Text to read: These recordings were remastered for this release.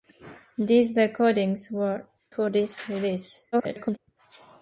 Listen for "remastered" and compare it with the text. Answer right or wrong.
wrong